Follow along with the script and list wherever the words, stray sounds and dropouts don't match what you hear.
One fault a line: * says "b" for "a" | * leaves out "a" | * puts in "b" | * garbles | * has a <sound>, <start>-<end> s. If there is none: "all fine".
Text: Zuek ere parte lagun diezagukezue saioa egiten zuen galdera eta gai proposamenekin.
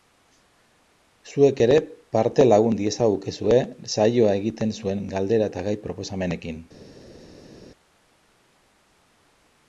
all fine